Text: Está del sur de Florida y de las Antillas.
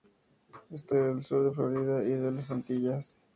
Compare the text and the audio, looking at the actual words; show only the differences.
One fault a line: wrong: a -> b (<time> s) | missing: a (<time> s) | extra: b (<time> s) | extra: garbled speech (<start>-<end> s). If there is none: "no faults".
no faults